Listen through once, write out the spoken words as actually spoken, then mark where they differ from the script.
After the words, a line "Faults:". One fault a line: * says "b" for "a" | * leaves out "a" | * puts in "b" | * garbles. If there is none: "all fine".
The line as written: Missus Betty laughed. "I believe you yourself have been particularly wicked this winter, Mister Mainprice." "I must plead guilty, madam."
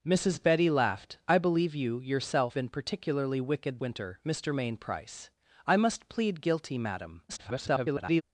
Missus Betty laughed. "I believe you yourself been particularly wicked winter, Mister Mainprice." "I must plead guilty, madam." [garbled]
Faults:
* leaves out "have"
* leaves out "this"
* garbles